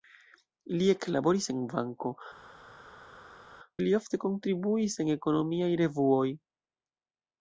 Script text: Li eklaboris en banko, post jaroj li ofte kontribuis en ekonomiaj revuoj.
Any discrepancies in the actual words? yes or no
yes